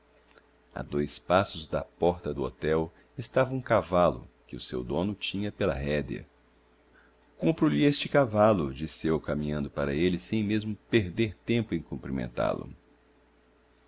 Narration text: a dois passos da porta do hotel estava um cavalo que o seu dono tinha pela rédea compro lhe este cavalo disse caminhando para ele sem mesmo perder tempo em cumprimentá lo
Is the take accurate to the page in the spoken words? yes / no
no